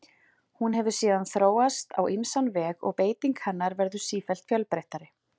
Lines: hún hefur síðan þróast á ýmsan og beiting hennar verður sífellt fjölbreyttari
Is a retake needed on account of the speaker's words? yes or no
yes